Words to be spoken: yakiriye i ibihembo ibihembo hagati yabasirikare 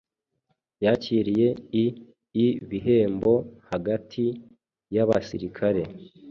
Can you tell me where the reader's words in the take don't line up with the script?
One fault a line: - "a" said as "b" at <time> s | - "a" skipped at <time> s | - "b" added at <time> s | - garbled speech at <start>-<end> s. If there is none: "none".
- "ibihembo" skipped at 3.3 s